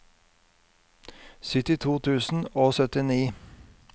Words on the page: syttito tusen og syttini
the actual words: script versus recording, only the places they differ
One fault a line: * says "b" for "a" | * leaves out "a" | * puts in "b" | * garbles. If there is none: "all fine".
all fine